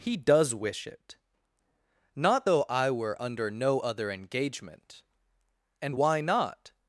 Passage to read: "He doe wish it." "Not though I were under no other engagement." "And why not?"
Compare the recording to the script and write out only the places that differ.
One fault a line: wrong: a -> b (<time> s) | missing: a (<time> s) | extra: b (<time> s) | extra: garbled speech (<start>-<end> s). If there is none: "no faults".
wrong: doe -> does (0.2 s)